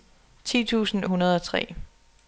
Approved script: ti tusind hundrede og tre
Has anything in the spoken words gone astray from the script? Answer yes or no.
no